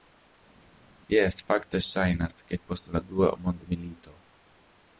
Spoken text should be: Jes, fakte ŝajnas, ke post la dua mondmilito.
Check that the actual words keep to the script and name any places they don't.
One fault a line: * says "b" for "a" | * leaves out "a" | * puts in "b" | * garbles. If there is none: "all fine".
all fine